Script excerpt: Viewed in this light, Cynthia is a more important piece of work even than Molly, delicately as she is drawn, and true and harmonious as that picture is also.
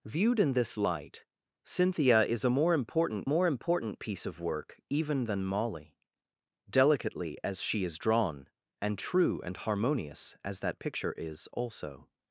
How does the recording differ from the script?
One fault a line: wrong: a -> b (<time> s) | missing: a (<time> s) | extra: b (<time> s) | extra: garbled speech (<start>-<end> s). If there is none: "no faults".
extra: more important (3.2 s)